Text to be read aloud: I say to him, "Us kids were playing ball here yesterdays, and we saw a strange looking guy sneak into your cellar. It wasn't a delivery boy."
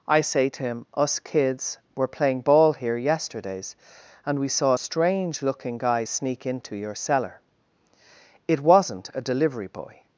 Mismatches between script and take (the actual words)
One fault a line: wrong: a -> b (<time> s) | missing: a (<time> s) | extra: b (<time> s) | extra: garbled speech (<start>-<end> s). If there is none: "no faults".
no faults